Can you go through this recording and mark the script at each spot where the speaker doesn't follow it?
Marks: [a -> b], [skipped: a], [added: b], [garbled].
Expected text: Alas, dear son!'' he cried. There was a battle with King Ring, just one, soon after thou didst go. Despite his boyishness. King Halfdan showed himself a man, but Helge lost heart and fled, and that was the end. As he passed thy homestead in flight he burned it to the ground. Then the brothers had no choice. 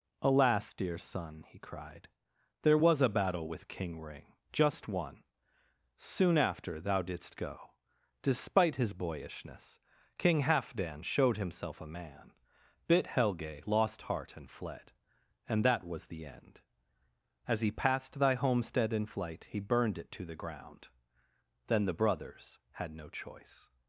Alas, dear son!'' he cried. There was a battle with King Ring, just one, soon after thou didst go. Despite his boyishness. King Halfdan showed himself a man, [but -> bit] Helge lost heart and fled, and that was the end. As he passed thy homestead in flight he burned it to the ground. Then the brothers had no choice.